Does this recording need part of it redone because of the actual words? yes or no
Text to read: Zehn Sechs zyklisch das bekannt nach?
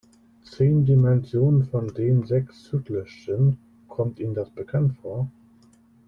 yes